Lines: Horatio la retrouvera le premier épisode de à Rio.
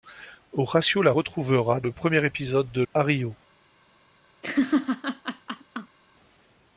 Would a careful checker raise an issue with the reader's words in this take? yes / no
no